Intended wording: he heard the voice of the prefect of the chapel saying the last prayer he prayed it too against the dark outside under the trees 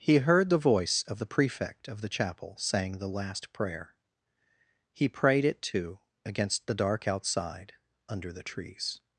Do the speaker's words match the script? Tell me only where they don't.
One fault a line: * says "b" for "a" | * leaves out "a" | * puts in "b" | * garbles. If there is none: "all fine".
all fine